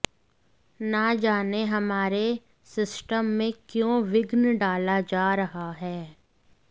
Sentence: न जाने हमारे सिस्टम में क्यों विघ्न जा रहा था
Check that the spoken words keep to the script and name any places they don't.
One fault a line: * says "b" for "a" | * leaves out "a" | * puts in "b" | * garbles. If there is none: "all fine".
* puts in "डाला"
* says "है" for "था"